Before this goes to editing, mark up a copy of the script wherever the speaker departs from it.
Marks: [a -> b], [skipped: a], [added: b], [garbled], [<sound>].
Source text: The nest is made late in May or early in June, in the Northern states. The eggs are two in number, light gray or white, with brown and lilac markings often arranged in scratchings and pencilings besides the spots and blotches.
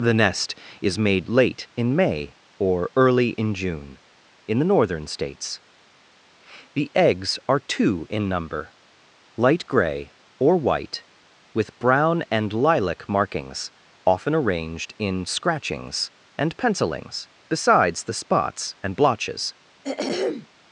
The nest is made late in May or early in June, in the Northern states. The eggs are two in number, light gray or white, with brown and lilac markings often arranged in scratchings and pencilings besides the spots and blotches. [throat clearing]